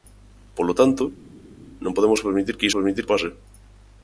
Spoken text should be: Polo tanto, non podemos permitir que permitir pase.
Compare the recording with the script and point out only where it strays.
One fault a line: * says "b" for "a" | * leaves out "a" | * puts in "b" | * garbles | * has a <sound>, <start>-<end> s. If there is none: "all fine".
all fine